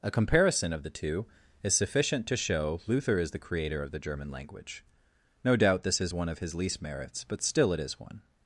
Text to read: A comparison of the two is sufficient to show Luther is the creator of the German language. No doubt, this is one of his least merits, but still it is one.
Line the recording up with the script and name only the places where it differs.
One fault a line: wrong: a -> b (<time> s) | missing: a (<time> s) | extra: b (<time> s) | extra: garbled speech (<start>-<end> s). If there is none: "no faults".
no faults